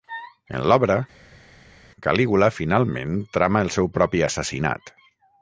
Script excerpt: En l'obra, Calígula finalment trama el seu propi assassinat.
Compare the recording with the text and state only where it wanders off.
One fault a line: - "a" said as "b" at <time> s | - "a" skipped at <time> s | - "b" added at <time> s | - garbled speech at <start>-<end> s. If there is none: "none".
none